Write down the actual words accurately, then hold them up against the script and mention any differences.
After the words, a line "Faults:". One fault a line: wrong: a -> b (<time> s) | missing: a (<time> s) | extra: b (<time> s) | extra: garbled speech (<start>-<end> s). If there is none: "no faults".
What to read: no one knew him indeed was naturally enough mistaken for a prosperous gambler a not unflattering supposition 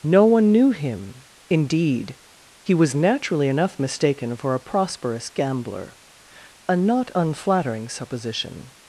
no one knew him indeed he was naturally enough mistaken for a prosperous gambler a not unflattering supposition
Faults:
extra: he (2.6 s)